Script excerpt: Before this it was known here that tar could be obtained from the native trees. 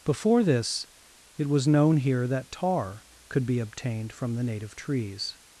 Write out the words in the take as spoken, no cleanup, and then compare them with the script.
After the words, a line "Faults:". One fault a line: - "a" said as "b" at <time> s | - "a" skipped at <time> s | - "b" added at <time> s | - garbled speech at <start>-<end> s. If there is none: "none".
Before this it was known here that tar could be obtained from the native trees.
Faults:
none